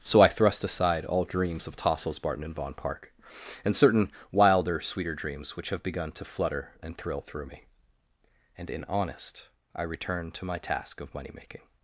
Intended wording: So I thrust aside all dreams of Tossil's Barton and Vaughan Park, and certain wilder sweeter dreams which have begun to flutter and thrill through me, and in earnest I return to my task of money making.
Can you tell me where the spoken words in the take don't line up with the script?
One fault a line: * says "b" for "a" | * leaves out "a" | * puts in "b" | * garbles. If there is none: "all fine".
* says "honest" for "earnest"